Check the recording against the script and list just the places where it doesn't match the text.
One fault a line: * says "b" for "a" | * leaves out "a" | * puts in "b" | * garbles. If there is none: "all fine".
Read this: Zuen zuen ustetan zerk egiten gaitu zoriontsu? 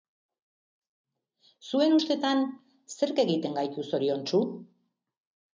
* leaves out "zuen"